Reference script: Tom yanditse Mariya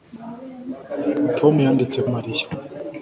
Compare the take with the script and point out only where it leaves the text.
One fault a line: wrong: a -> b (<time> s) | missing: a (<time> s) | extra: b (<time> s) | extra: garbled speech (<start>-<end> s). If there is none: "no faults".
no faults